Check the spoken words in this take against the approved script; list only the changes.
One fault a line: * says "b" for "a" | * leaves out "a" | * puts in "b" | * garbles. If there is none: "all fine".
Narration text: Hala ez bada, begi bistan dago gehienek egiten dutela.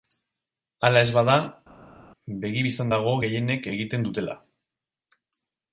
all fine